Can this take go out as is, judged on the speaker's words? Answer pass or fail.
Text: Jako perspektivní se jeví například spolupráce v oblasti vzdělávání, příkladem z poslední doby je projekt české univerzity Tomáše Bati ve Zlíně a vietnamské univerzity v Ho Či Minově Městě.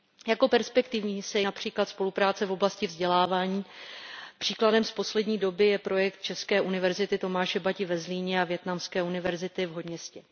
fail